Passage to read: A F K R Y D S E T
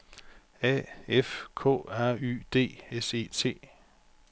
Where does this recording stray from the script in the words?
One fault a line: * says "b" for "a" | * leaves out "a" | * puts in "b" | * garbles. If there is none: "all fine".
all fine